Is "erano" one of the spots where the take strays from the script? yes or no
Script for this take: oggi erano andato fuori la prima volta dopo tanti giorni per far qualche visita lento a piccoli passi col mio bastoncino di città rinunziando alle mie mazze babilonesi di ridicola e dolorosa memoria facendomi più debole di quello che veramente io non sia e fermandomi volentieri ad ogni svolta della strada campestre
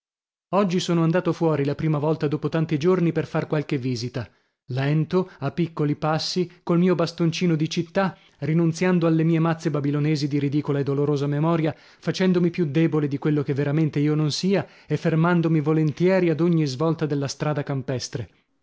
yes